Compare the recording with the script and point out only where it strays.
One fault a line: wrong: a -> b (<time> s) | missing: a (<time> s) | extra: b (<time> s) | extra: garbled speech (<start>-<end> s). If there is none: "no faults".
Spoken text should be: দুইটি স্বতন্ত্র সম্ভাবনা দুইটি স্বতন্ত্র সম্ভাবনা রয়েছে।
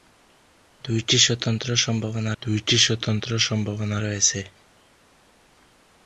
no faults